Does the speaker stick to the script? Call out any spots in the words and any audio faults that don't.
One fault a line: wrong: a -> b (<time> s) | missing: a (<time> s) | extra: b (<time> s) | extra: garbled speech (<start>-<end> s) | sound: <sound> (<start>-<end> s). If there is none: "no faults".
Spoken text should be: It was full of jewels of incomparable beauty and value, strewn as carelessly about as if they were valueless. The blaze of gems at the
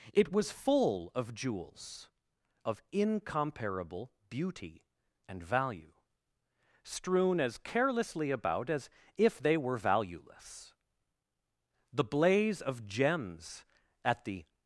no faults